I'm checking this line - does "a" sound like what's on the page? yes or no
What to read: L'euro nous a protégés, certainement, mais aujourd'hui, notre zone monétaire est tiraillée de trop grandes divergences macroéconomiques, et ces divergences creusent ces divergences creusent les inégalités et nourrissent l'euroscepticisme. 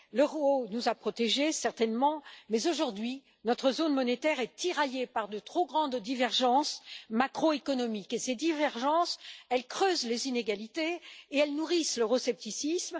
yes